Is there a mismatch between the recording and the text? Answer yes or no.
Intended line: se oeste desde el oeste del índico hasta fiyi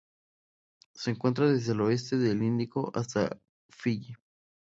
yes